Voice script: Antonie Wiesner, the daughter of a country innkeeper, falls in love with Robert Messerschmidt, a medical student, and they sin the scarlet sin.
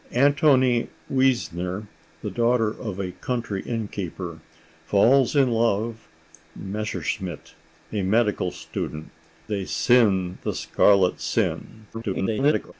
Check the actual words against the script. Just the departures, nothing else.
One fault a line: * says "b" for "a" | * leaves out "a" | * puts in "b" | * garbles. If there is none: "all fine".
* leaves out "with Robert"
* leaves out "and"
* garbles